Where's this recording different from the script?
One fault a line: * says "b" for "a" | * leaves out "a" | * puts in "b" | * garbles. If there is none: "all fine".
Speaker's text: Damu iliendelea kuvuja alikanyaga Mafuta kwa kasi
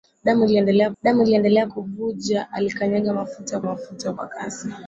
* puts in "damu iliendelea"
* puts in "Mafuta"